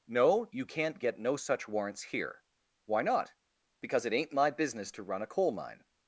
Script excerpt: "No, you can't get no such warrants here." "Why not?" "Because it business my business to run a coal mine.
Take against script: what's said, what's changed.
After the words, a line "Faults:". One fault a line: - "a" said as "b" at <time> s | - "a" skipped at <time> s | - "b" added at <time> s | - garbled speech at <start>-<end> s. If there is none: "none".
"No, you can't get no such warrants here." "Why not?" "Because it ain't my business to run a coal mine.
Faults:
- "business" said as "ain't" at 4.1 s